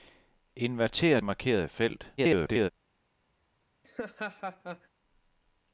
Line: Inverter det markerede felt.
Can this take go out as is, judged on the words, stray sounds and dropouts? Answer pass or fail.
fail